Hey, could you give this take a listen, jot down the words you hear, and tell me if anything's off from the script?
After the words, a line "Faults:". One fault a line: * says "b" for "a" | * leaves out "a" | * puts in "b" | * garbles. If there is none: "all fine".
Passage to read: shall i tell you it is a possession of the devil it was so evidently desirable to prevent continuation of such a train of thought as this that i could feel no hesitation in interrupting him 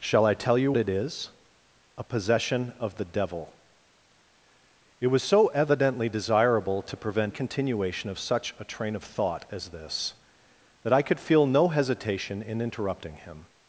shall i tell you it is a possession of the devil it was so evidently desirable to prevent continuation of such a train of thought as this that i could feel no hesitation in interrupting him
Faults:
all fine